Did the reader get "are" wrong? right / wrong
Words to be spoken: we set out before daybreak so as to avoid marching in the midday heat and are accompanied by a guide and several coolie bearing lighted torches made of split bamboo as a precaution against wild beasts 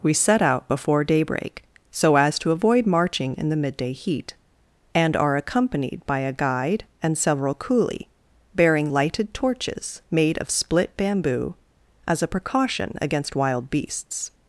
right